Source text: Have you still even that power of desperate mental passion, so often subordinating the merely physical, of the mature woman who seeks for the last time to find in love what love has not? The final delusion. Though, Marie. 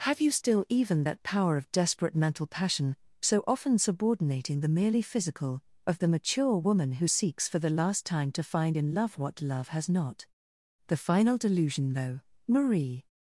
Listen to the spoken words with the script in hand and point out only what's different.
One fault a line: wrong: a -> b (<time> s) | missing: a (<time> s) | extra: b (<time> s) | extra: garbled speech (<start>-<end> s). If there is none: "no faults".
no faults